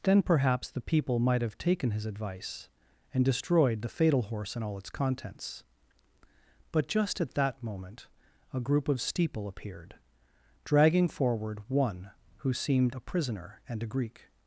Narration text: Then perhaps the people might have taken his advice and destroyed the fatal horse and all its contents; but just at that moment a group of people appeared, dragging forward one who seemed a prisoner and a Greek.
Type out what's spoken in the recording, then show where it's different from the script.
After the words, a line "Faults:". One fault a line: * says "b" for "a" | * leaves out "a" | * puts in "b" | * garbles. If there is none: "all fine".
Then perhaps the people might have taken his advice and destroyed the fatal horse and all its contents; but just at that moment a group of steeple appeared, dragging forward one who seemed a prisoner and a Greek.
Faults:
* says "steeple" for "people"